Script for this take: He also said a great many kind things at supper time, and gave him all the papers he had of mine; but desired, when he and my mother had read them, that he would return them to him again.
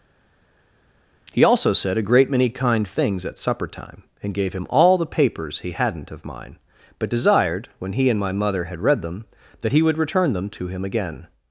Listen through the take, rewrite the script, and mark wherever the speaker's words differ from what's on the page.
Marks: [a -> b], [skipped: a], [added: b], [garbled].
He also said a great many kind things at supper time, and gave him all the papers he [had -> hadn't] of mine; but desired, when he and my mother had read them, that he would return them to him again.